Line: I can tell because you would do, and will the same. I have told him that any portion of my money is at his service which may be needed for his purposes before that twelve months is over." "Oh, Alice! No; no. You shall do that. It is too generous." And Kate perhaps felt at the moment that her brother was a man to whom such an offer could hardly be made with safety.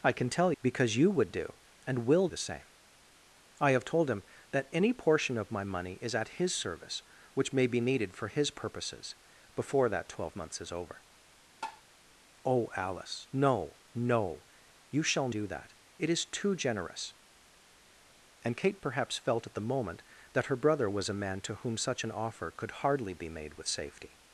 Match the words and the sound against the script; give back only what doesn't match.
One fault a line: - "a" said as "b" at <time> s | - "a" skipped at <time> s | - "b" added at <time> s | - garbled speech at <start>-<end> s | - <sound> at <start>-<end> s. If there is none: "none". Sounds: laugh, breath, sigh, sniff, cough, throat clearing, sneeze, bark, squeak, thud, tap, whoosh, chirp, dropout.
- tap at 11.6-11.8 s